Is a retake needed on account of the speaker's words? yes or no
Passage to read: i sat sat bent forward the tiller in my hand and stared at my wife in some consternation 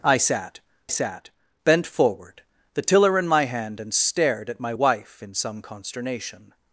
no